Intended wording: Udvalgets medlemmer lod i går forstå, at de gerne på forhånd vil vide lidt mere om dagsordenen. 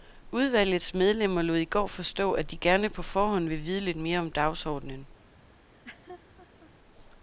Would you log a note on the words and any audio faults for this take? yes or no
yes